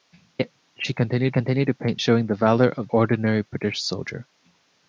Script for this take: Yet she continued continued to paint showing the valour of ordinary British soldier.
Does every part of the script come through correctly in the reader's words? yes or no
yes